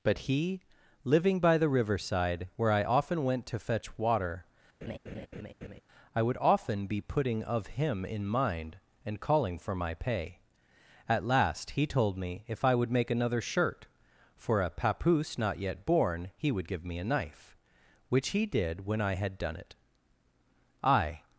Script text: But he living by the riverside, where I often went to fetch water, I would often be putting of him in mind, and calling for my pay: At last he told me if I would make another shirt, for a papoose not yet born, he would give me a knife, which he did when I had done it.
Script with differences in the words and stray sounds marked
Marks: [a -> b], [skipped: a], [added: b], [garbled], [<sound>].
But he living by the riverside, where I often went to fetch water, [laugh] I would often be putting of him in mind, and calling for my pay: At last he told me if I would make another shirt, for a papoose not yet born, he would give me a knife, which he did when I had done it. [added: I]